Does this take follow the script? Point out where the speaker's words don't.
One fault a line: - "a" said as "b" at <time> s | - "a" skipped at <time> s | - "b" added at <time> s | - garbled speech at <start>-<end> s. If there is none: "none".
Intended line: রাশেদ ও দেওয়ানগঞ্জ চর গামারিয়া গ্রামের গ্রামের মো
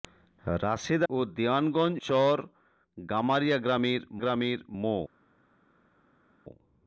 none